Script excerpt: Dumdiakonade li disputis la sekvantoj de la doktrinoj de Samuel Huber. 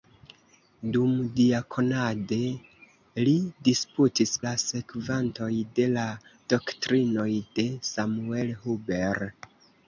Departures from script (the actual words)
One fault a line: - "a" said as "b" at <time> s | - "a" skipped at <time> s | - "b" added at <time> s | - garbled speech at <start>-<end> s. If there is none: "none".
none